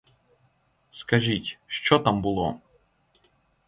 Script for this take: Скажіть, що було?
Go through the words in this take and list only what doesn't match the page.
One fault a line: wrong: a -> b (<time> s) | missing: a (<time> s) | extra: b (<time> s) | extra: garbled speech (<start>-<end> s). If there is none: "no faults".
extra: там (2.0 s)